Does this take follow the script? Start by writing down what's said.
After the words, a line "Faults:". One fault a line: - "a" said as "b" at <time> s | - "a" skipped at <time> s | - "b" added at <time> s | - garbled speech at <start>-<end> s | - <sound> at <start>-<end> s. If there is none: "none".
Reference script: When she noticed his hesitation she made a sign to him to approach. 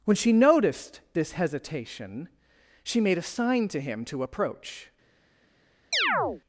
When she noticed this hesitation she made a sign to him to approach.
Faults:
- "his" said as "this" at 1.1 s
- chirp at 5.9-6.4 s